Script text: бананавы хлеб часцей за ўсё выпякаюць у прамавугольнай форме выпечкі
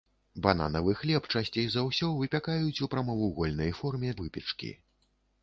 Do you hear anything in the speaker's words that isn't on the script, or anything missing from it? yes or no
no